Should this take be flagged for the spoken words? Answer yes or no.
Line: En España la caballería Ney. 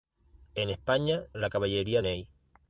no